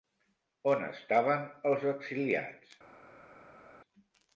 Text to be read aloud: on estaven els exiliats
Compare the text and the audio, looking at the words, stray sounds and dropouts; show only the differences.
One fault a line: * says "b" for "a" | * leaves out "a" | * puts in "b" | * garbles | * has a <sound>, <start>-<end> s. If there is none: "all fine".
all fine